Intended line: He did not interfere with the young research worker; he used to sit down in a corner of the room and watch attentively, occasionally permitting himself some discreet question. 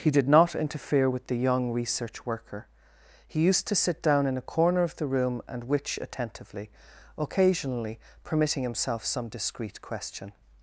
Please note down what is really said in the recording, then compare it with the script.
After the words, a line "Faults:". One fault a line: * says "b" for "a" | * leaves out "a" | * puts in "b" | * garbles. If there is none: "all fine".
He did not interfere with the young research worker; he used to sit down in a corner of the room and witch attentively, occasionally permitting himself some discreet question.
Faults:
* says "witch" for "watch"